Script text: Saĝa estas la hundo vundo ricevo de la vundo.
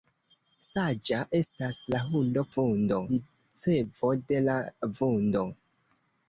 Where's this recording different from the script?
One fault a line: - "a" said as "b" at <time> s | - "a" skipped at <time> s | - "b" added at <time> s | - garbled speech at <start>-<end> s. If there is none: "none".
none